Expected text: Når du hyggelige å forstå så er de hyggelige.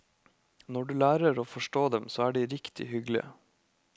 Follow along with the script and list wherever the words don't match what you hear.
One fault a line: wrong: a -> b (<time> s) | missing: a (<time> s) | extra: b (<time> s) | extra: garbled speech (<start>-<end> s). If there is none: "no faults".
wrong: hyggelige -> lærer (1.0 s)
extra: dem (1.9 s)
extra: riktig (2.5 s)